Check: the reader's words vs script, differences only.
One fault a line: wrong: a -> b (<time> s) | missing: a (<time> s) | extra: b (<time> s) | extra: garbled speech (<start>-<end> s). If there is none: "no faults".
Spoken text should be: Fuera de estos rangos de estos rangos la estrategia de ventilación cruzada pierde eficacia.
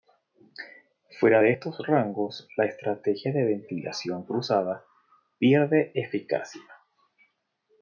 missing: de estos rangos (2.5 s)